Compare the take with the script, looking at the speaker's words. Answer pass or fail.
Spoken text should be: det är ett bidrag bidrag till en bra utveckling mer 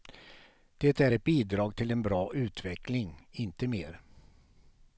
fail